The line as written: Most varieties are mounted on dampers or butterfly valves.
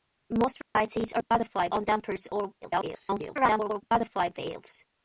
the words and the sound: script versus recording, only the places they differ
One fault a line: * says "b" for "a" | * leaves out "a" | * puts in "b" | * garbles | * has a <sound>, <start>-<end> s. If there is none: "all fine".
* has a dropout, 0.6-0.8 s
* says "butterfly" for "mounted"
* garbles